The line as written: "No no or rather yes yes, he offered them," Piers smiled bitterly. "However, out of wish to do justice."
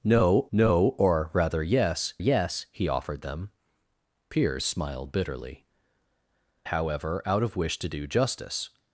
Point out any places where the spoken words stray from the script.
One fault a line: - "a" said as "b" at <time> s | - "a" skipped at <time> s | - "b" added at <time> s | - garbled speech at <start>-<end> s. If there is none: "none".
none